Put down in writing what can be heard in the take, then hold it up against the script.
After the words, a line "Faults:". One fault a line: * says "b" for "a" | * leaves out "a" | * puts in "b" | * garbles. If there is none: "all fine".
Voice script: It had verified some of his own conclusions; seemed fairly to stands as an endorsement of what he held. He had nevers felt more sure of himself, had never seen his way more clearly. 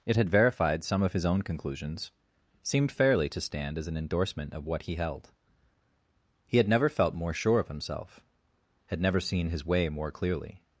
It had verified some of his own conclusions; seemed fairly to stand as an endorsement of what he held. He had never felt more sure of himself, had never seen his way more clearly.
Faults:
* says "stand" for "stands"
* says "never" for "nevers"